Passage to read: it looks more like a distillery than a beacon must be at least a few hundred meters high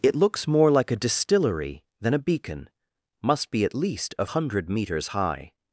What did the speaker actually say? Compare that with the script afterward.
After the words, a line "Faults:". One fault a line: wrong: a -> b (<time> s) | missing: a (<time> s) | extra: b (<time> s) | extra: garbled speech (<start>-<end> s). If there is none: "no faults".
it looks more like a distillery than a beacon must be at least a hundred meters high
Faults:
missing: few (4.2 s)